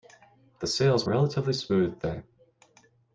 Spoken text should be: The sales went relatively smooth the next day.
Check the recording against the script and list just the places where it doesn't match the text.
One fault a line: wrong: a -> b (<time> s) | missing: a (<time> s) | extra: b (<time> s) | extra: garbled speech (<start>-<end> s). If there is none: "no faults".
missing: went (1.1 s)
missing: next (2.1 s)